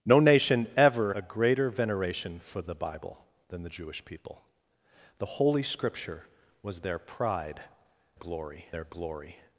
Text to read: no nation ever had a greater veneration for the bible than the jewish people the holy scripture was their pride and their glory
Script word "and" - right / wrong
wrong